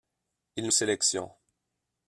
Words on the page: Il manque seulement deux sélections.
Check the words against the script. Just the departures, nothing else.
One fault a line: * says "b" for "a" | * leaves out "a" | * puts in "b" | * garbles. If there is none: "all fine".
* leaves out "manque seulement deux"